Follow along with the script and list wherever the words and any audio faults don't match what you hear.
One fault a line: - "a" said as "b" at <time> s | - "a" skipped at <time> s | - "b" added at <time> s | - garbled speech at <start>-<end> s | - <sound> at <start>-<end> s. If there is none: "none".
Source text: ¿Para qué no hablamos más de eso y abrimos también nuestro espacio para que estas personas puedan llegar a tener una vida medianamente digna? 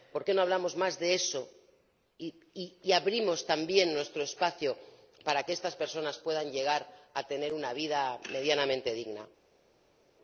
- "Para" said as "Por" at 0.1 s